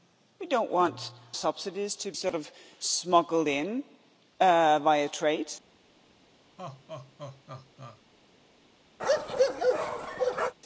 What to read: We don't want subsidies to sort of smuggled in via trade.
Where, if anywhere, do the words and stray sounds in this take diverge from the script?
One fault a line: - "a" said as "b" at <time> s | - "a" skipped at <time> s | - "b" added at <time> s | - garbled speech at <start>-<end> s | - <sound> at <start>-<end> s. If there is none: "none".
- laugh at 6.6-8.0 s
- bark at 9.0-10.5 s